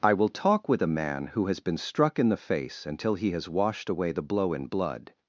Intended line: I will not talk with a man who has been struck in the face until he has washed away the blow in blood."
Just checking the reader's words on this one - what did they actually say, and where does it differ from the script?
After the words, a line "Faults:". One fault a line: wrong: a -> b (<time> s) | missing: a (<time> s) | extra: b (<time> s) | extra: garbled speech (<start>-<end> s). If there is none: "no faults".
I will talk with a man who has been struck in the face until he has washed away the blow in blood."
Faults:
missing: not (0.3 s)